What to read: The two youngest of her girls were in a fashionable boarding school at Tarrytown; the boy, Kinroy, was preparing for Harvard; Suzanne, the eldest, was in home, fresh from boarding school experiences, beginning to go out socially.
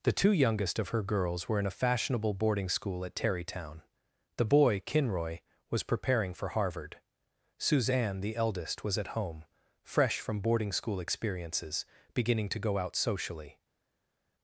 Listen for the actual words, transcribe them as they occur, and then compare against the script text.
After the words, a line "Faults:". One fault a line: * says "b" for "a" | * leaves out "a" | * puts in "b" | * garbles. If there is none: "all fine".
The two youngest of her girls were in a fashionable boarding school at Tarrytown; the boy, Kinroy, was preparing for Harvard; Suzanne, the eldest, was at home, fresh from boarding school experiences, beginning to go out socially.
Faults:
* says "at" for "in"